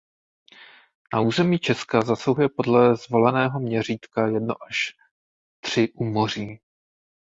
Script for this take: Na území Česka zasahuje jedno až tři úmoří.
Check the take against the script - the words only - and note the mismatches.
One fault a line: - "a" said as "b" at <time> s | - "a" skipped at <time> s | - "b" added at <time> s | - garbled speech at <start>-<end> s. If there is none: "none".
- "podle zvoleného měřítka" added at 2.5 s